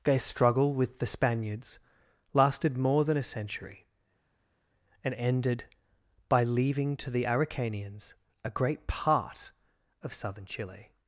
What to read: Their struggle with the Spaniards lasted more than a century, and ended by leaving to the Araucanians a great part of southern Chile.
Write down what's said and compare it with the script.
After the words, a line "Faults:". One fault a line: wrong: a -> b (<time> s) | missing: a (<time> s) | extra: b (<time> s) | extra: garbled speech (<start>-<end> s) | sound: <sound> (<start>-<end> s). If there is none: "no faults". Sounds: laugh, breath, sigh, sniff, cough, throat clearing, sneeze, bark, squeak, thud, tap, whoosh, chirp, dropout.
Their struggle with the Spaniards lasted more than a century, and ended by leaving to the Araucanians a great part of southern Chile.
Faults:
no faults